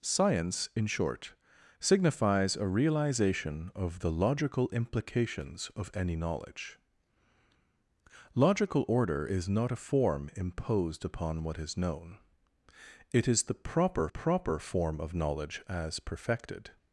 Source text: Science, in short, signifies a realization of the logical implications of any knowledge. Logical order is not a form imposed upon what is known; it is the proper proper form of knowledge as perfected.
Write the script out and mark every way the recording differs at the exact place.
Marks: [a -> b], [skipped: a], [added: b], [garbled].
Science, in short, signifies a realization of the logical implications of any knowledge. Logical order is not a form imposed upon what is known; it is the proper proper form of knowledge as perfected.